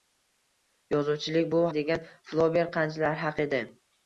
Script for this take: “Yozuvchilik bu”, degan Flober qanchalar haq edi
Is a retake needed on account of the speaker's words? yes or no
no